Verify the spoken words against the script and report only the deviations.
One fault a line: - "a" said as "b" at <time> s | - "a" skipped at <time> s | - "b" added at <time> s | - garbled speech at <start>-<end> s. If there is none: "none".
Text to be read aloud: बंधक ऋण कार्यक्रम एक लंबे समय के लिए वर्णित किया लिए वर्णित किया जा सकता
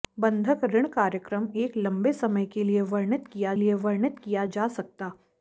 none